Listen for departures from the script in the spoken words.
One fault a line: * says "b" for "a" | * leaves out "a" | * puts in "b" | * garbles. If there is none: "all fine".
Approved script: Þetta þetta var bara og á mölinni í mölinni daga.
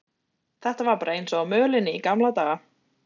* leaves out "þetta"
* puts in "eins"
* says "gamla" for "mölinni"